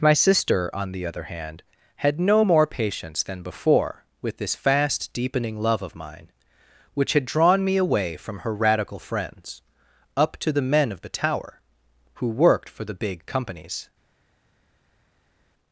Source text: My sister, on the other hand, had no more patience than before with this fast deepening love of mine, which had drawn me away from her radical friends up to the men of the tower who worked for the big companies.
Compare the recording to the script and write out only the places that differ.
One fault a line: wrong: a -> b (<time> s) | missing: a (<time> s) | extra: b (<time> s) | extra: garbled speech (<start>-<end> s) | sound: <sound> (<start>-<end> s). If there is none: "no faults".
no faults